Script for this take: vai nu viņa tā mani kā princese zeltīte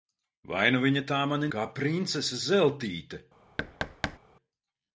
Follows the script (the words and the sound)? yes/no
no